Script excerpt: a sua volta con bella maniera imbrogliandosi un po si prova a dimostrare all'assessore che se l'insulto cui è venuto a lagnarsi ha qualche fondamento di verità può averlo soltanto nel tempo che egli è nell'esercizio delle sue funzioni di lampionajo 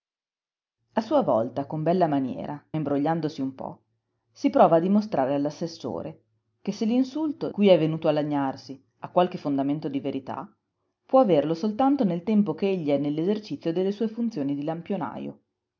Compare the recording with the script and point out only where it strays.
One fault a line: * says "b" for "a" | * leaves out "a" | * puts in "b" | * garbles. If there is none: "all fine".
all fine